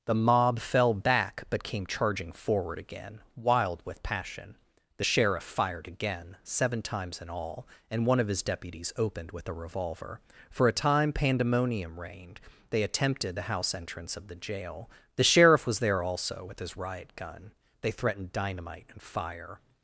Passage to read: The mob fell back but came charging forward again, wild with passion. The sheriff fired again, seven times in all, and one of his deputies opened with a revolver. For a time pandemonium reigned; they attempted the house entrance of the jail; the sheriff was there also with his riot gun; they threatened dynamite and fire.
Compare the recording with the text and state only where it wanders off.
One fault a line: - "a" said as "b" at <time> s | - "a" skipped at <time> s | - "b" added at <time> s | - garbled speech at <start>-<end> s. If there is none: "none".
none